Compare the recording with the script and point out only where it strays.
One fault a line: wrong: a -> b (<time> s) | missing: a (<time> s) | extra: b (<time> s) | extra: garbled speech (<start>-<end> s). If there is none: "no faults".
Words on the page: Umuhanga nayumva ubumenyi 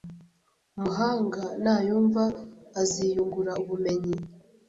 extra: aziyungura (2.8 s)